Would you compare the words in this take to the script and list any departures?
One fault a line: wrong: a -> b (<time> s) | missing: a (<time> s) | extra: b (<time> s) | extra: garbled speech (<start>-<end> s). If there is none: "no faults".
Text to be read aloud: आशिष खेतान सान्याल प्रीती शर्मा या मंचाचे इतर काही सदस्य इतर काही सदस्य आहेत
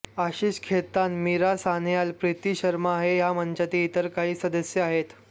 extra: मीरा (1.2 s)
extra: हे (3.0 s)
missing: इतर काही सदस्य (4.8 s)